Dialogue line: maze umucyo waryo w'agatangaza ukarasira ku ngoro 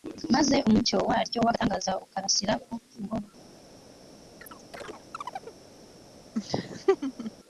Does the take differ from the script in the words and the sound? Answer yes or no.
yes